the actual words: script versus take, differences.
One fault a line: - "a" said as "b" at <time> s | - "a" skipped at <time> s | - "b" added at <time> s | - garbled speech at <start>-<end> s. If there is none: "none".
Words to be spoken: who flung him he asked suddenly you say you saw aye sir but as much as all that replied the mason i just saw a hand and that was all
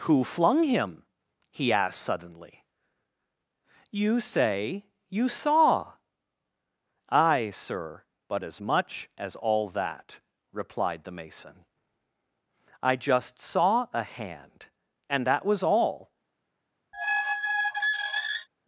none